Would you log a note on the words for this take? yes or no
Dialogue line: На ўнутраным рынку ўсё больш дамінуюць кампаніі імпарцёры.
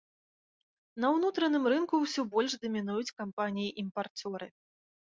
no